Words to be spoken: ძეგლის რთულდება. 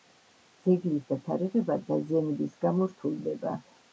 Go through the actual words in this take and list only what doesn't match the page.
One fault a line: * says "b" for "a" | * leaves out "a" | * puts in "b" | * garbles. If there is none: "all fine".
* puts in "დათარიღება დაზიანების გამო"